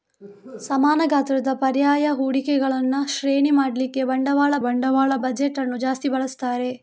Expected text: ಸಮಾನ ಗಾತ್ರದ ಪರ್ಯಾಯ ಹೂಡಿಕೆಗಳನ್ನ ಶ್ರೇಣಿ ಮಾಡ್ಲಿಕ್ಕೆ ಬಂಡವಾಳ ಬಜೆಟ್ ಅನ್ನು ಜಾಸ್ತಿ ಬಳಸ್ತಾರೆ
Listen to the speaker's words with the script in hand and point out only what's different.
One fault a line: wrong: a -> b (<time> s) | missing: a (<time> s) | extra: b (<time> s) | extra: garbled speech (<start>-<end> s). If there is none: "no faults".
extra: ಬಂಡವಾಳ (4.6 s)